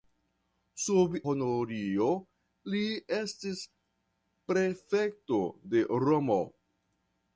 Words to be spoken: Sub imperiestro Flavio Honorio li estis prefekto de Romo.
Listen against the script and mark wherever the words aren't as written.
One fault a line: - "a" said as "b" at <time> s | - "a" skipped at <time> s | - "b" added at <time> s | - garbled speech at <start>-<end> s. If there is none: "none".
- "imperiestro Flavio" skipped at 1.2 s